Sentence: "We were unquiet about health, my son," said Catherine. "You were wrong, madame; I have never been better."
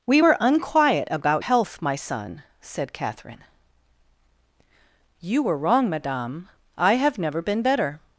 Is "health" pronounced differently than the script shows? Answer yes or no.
no